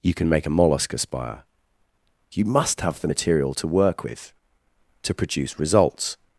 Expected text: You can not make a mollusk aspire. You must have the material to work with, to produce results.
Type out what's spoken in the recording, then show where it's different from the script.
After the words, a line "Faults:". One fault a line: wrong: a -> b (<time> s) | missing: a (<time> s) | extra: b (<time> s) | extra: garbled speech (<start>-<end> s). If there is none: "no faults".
You can make a mollusk aspire. You must have the material to work with, to produce results.
Faults:
missing: not (0.3 s)